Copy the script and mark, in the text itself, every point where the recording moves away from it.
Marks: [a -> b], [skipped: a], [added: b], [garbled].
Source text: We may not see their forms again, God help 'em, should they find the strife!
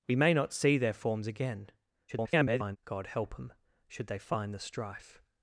We may not see their forms again, [garbled] God help 'em, should they find the strife!